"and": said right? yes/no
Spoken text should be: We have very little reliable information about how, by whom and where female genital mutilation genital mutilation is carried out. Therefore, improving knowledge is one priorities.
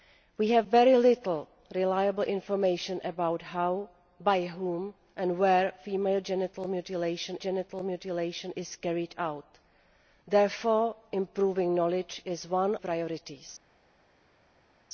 yes